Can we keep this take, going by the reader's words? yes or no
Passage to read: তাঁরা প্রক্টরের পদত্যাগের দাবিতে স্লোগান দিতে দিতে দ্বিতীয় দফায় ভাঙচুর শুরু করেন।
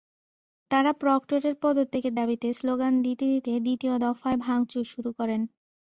yes